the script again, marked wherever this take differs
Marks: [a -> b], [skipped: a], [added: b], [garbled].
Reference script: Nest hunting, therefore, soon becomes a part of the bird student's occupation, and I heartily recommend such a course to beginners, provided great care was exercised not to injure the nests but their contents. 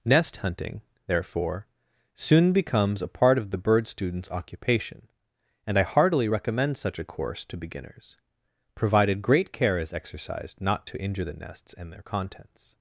Nest hunting, therefore, soon becomes a part of the bird student's occupation, and I heartily recommend such a course to beginners, provided great care [was -> is] exercised not to injure the nests [but -> and] their contents.